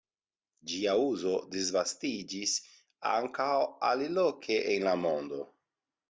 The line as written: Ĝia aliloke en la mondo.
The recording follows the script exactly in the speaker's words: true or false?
false